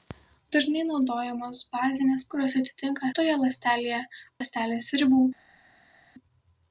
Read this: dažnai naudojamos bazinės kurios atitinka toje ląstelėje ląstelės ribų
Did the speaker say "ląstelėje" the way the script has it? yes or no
yes